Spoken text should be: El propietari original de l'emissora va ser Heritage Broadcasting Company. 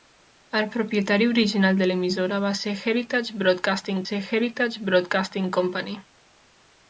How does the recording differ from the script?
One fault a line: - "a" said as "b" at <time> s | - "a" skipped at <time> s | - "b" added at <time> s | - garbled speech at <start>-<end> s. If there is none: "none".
- "ser Heritage Broadcasting" added at 4.1 s